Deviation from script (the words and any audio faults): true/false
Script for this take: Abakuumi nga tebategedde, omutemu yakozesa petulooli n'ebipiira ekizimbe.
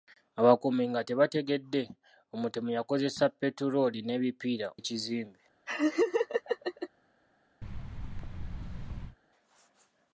true